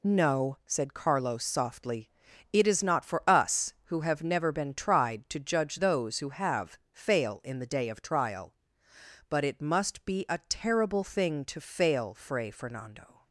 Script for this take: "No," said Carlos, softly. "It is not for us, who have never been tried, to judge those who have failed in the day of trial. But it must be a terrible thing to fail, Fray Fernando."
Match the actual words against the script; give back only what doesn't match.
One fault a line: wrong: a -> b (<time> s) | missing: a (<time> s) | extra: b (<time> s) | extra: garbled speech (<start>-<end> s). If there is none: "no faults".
wrong: failed -> fail (6.9 s)